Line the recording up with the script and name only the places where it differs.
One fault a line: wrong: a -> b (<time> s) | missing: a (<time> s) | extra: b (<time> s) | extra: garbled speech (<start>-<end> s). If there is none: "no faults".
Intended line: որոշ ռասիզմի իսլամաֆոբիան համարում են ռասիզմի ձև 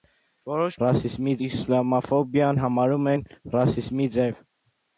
no faults